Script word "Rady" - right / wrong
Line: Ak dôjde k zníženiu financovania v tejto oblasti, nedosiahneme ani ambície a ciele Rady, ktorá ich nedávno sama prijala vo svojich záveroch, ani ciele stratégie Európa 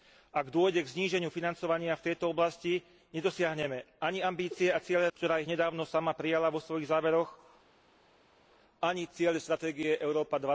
wrong